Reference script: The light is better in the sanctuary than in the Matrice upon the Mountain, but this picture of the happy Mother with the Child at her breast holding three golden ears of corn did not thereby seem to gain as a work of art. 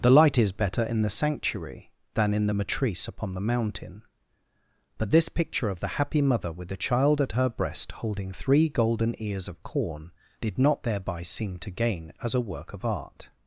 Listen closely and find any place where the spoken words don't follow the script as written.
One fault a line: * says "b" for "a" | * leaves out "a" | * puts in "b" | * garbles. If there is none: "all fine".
all fine